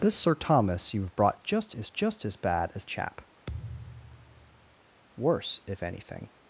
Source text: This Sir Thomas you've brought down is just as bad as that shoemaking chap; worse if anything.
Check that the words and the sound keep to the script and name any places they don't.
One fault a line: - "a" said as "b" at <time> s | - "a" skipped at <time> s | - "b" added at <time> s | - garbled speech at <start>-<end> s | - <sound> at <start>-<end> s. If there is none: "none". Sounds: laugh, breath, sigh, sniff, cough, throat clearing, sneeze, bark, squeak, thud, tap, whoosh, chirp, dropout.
- "down" said as "just" at 1.4 s
- "that shoemaking" skipped at 2.9 s
- thud at 3.5-4.8 s